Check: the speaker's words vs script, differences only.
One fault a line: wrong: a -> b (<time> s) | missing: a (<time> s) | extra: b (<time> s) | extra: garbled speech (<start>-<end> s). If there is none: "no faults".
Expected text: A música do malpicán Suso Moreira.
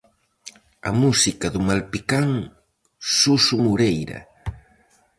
no faults